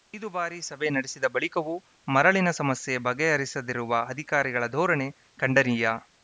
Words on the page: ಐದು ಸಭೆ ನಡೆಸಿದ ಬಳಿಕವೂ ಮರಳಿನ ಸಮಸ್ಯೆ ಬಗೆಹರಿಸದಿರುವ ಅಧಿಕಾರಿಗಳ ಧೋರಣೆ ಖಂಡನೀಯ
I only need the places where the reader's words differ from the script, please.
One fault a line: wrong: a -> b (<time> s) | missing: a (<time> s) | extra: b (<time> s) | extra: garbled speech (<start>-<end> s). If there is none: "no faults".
extra: ಬಾರಿ (0.3 s)